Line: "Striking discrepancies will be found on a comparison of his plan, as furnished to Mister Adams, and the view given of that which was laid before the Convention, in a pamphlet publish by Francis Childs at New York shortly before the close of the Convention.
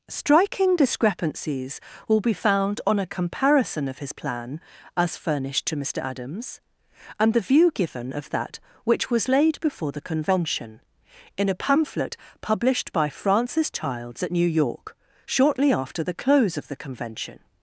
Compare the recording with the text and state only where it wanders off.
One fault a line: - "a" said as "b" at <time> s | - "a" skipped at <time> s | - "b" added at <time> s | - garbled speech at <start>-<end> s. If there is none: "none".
- "publish" said as "published" at 12.4 s
- "before" said as "after" at 15.7 s